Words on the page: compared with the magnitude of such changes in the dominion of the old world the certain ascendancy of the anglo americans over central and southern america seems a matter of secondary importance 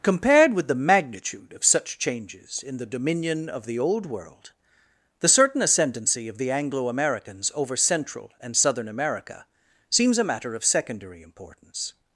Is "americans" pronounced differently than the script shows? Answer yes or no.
no